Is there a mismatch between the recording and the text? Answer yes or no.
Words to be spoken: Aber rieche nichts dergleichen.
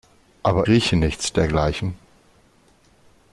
no